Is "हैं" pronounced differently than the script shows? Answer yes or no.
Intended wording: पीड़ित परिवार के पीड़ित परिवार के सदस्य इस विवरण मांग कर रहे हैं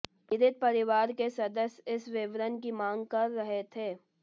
yes